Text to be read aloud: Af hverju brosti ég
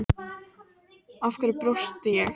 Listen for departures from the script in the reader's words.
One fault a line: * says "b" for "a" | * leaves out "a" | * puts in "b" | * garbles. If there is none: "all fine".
all fine